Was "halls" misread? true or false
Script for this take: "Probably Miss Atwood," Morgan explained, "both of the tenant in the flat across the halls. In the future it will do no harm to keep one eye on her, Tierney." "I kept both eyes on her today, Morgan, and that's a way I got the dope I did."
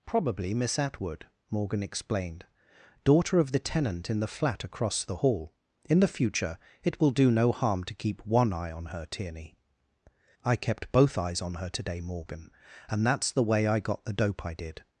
true